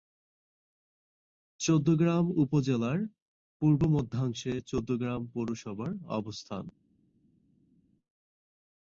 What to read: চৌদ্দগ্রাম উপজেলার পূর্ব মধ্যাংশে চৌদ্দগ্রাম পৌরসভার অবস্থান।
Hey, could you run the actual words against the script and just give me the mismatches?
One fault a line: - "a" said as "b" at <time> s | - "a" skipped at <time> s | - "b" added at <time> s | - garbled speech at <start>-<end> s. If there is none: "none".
none